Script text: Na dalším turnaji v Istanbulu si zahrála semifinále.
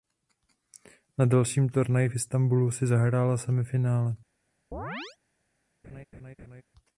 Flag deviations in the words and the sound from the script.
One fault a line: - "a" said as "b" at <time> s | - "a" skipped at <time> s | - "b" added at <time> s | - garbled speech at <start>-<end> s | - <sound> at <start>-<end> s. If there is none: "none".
- chirp at 4.7-5.2 s
- laugh at 5.8-6.6 s